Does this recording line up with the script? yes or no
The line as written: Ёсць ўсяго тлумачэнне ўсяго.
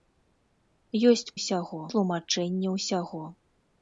yes